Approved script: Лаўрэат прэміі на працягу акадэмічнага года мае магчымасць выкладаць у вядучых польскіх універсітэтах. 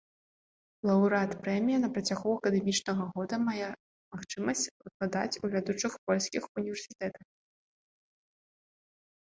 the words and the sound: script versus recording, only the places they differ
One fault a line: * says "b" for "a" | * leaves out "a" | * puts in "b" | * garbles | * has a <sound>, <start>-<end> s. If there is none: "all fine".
all fine